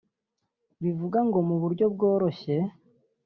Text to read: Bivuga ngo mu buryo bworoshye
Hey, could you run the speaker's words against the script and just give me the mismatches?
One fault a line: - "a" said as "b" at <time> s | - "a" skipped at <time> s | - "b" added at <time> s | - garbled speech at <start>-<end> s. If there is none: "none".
none